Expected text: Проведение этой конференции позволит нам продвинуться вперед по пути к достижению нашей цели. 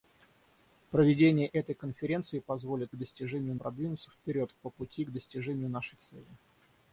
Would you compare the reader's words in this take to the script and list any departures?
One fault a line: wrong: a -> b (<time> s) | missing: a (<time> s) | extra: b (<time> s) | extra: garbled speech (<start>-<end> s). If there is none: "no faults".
wrong: нам -> достижению (3.0 s)